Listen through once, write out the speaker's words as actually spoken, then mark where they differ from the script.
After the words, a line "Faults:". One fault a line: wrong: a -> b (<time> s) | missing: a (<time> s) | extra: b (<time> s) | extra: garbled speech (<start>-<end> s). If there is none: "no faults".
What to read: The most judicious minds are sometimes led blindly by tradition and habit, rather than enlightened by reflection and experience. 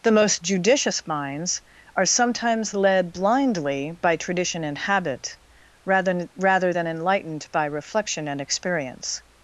The most judicious minds are sometimes led blindly by tradition and habit, rather rather than enlightened by reflection and experience.
Faults:
extra: rather (6.4 s)